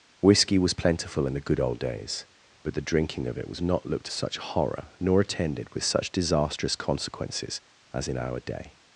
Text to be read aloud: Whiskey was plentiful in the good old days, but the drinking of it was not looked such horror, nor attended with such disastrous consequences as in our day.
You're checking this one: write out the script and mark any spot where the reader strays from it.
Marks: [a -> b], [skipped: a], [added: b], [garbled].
Whiskey was plentiful in the good old days, but the drinking of it was not looked such horror, nor attended with such disastrous consequences as in our day.